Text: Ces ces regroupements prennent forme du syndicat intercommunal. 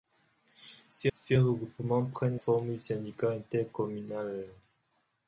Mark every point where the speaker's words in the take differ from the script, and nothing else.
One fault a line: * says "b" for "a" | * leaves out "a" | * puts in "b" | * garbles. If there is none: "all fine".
all fine